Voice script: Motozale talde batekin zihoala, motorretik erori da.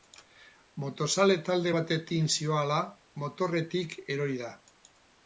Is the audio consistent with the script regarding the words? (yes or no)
yes